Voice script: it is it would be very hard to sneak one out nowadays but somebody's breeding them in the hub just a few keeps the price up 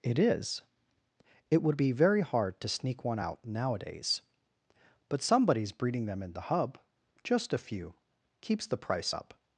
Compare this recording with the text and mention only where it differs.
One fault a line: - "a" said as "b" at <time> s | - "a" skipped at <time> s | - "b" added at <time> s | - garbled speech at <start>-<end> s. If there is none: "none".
none